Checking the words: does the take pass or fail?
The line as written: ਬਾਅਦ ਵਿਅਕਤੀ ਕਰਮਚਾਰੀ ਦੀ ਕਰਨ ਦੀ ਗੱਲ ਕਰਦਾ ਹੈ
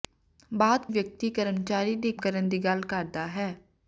pass